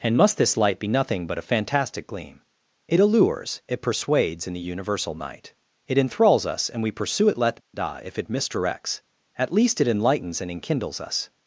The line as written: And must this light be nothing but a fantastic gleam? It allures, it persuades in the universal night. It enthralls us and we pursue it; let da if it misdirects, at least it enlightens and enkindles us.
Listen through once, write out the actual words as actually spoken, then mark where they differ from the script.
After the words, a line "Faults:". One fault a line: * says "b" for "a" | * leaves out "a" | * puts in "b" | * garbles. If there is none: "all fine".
And must this light be nothing but a fantastic gleam? It allures, it persuades in the universal night. It enthralls us and we pursue it; let da if it misdirects, at least it enlightens and enkindles us.
Faults:
all fine